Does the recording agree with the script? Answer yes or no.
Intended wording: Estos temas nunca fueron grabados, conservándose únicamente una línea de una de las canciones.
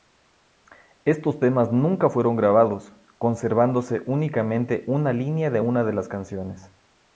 yes